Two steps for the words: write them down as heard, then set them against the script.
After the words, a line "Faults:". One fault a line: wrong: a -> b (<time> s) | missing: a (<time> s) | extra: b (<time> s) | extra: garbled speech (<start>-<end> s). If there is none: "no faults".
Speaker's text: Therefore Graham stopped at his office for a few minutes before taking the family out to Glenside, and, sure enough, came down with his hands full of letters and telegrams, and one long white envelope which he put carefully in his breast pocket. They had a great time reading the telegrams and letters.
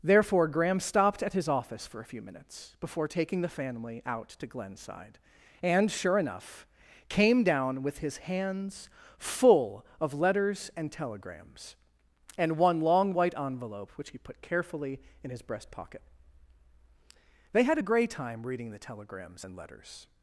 Therefore Graham stopped at his office for a few minutes before taking the family out to Glenside, and, sure enough, came down with his hands full of letters and telegrams, and one long white envelope which he put carefully in his breast pocket. They had a grey time reading the telegrams and letters.
Faults:
wrong: great -> grey (17.8 s)